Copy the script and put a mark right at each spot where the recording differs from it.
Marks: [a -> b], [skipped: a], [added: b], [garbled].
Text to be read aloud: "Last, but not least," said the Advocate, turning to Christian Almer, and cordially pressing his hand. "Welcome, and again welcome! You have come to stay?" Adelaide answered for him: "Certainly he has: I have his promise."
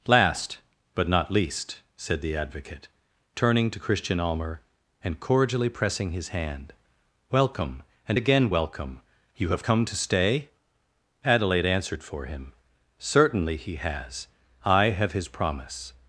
"Last, but not least," said the Advocate, turning to Christian Almer, and cordially pressing his hand. "Welcome, and again welcome! You have come to stay?" Adelaide answered for him: "Certainly he has: I have his promise."